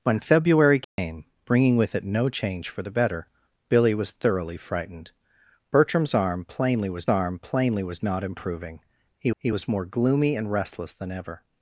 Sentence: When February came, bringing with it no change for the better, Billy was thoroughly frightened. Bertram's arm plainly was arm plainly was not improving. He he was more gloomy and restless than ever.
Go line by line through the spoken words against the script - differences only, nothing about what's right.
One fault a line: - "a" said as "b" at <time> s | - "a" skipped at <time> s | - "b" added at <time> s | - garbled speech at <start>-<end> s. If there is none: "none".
none